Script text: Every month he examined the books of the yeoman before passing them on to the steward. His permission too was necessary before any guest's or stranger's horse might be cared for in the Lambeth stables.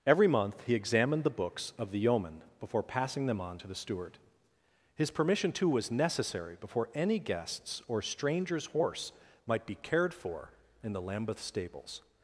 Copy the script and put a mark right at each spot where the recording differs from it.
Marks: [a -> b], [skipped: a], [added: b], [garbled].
Every month he examined the books of the yeoman before passing them on to the steward. His permission too was necessary before any guest's or stranger's horse might be cared for in the Lambeth stables.